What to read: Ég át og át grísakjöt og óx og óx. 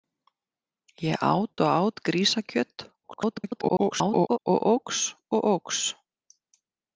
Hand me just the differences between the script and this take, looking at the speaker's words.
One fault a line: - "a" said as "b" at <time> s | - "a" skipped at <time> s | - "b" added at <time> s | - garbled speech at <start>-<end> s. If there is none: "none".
- garbled speech at 3.0-4.4 s